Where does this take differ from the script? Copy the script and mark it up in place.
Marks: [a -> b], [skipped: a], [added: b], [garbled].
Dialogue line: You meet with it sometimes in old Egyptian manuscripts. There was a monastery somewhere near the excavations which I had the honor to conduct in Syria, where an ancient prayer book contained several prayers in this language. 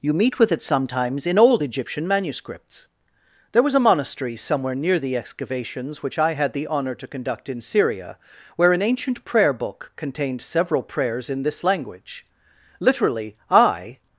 You meet with it sometimes in old Egyptian manuscripts. There was a monastery somewhere near the excavations which I had the honor to conduct in Syria, where an ancient prayer book contained several prayers in this language. [added: Literally I]